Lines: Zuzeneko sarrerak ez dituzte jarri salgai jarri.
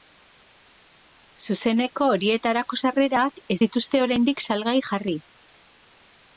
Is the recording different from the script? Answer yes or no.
yes